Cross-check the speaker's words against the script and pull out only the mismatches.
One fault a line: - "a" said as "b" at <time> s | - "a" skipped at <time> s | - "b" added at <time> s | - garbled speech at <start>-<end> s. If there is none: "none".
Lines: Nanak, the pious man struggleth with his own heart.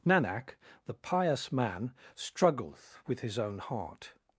none